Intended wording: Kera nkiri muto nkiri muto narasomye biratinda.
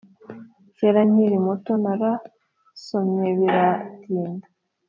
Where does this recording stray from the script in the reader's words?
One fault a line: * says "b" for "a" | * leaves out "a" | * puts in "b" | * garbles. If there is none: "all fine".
* leaves out "nkiri muto"